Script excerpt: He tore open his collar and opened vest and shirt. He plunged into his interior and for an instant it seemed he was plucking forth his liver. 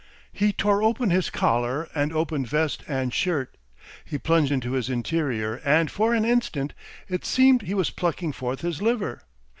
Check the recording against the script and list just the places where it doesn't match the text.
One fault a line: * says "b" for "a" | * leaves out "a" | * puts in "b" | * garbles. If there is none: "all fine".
all fine